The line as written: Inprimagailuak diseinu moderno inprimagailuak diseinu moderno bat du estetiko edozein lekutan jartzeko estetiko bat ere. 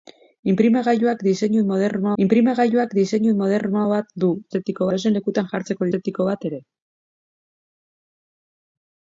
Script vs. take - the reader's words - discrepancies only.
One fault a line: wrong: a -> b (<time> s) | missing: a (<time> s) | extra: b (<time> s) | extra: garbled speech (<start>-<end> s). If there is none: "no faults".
no faults